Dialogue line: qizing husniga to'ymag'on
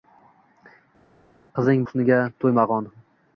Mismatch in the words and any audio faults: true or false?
false